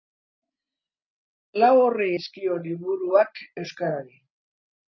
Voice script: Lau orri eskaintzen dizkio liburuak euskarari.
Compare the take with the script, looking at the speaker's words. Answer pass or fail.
fail